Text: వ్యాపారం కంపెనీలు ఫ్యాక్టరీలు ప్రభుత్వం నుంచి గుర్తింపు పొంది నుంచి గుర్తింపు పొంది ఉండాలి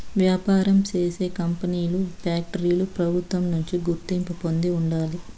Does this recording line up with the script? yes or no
no